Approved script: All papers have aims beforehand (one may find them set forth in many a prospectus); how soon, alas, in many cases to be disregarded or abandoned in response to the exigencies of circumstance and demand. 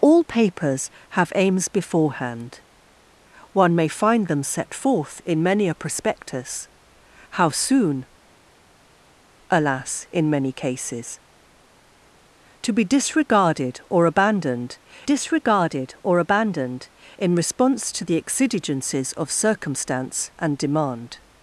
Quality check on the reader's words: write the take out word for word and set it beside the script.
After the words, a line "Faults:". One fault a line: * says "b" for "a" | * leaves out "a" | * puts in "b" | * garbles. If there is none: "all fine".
All papers have aims beforehand (one may find them set forth in many a prospectus); how soon, alas, in many cases to be disregarded or abandoned disregarded or abandoned in response to the exigencies of circumstance and demand.
Faults:
* puts in "disregarded or abandoned"